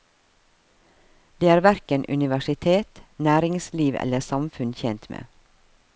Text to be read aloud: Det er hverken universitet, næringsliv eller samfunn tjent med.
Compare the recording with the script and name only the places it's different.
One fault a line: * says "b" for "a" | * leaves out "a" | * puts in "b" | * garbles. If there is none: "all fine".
all fine